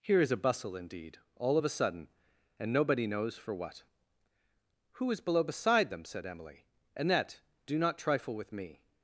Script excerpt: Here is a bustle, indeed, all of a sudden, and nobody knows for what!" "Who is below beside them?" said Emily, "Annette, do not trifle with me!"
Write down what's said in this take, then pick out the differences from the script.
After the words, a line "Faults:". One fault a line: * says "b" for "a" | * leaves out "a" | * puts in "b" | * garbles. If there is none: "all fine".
Here is a bustle, indeed, all of a sudden, and nobody knows for what!" "Who is below beside them?" said Emily, "Annette, do not trifle with me!"
Faults:
all fine